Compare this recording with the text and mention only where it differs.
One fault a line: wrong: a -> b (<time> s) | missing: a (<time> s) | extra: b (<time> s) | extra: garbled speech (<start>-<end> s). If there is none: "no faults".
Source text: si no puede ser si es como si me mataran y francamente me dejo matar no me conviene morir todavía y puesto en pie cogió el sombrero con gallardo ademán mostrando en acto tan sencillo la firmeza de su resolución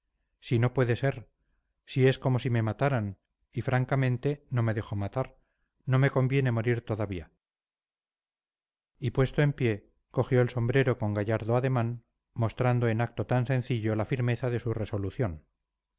extra: no (4.5 s)